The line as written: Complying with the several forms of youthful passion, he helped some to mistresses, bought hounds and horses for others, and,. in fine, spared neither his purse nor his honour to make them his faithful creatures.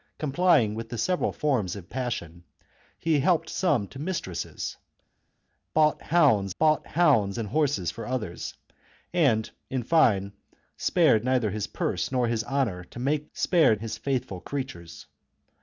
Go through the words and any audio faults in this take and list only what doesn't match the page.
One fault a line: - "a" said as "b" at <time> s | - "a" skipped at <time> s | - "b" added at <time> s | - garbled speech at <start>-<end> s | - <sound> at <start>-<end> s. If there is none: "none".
- "youthful" skipped at 1.9 s
- "bought hounds" added at 6.6 s
- "them" said as "spared" at 13.3 s